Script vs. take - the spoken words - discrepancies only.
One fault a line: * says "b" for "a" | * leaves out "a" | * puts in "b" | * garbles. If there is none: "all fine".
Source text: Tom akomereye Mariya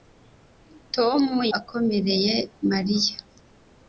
all fine